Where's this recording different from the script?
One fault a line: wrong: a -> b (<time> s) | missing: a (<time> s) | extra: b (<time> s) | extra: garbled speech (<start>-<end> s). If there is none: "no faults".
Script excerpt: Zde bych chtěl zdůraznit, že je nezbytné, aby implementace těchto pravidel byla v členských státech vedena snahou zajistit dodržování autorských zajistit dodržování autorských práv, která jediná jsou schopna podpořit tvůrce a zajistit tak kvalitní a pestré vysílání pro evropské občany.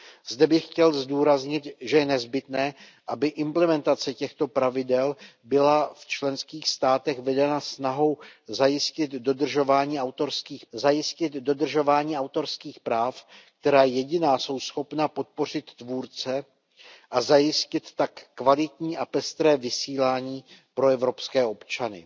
no faults